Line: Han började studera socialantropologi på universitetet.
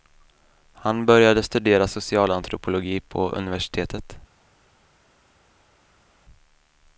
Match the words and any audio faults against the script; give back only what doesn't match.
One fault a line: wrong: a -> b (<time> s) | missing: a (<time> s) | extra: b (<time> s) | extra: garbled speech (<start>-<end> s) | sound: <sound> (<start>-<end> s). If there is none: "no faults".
no faults